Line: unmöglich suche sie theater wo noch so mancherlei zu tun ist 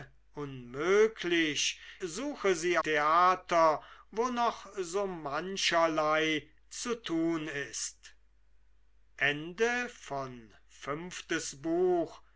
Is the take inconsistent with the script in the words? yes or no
no